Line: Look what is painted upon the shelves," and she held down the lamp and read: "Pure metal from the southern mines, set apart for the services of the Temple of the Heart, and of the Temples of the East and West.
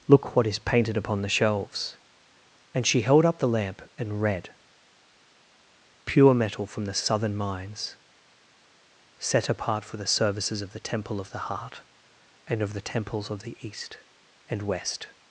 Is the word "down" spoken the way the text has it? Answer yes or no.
no